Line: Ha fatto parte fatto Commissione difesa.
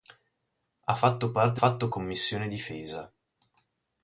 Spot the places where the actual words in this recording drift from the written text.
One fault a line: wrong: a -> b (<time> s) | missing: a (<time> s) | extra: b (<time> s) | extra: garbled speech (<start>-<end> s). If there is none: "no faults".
no faults